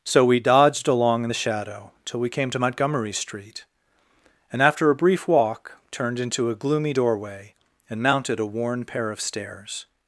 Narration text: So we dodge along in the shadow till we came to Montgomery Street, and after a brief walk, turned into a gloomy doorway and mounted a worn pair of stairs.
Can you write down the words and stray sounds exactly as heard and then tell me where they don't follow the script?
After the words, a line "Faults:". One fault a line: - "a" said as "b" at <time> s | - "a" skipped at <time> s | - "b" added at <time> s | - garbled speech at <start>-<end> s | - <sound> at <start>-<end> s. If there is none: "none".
So we dodged along in the shadow till we came to Montgomery Street, and after a brief walk, turned into a gloomy doorway and mounted a worn pair of stairs.
Faults:
- "dodge" said as "dodged" at 0.4 s